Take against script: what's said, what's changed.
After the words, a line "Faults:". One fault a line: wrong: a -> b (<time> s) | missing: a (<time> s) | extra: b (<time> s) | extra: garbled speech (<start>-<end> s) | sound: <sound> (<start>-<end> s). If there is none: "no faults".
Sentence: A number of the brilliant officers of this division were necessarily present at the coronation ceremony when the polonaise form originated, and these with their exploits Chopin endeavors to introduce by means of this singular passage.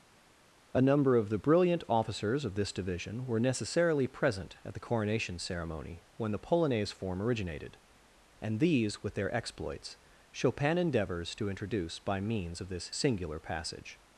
A number of the brilliant officers of this division were necessarily present at the coronation ceremony when the polonaise form originated, and these with their exploits Chopin endeavors to introduce by means of this singular passage.
Faults:
no faults